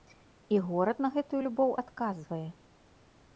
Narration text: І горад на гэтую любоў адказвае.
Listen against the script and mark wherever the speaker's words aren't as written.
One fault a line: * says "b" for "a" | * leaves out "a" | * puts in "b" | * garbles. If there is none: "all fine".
all fine